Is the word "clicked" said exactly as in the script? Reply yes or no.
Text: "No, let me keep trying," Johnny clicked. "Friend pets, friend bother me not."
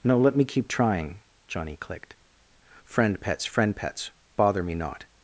yes